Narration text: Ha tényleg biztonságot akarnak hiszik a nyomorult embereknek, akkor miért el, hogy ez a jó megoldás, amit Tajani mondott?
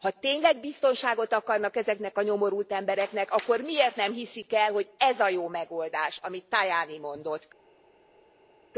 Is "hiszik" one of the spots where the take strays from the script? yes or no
yes